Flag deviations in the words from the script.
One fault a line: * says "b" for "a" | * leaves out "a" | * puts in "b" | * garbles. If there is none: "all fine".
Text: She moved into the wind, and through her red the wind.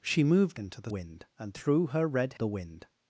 all fine